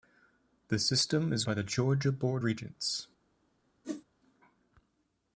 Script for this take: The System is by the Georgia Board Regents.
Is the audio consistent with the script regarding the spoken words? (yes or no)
yes